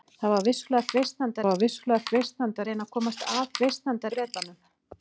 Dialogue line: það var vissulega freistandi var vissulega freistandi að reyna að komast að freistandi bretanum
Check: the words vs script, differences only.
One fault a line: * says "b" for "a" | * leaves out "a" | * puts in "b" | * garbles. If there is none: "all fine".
all fine